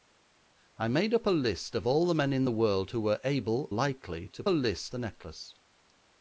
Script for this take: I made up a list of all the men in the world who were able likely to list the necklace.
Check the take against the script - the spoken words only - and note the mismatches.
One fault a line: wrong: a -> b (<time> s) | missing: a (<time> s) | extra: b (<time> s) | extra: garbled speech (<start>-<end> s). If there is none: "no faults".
no faults